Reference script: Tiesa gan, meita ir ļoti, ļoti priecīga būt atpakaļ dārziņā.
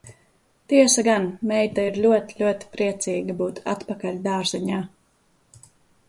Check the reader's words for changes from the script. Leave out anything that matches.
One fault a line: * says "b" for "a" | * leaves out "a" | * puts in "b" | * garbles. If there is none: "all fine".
all fine